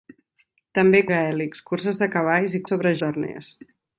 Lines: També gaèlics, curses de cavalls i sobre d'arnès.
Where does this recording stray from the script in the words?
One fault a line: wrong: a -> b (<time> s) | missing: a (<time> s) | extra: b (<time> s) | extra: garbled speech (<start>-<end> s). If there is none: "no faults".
no faults